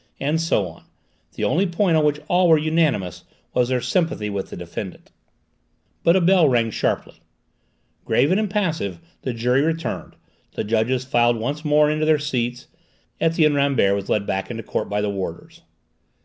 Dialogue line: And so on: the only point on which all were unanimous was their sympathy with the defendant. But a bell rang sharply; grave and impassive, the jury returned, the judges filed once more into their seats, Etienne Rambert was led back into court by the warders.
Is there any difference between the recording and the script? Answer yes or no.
no